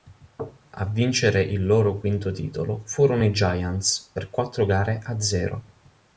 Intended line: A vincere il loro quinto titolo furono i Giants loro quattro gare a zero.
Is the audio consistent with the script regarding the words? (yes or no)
no